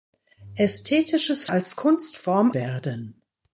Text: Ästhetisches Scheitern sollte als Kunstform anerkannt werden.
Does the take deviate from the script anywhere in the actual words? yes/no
yes